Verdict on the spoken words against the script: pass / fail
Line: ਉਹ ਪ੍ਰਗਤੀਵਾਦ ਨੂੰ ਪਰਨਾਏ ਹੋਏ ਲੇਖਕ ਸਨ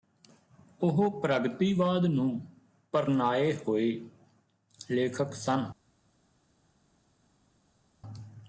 pass